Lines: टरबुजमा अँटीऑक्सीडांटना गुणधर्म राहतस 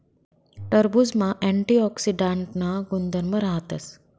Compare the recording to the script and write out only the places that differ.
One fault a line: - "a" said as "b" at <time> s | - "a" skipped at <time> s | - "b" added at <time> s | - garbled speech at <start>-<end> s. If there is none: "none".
none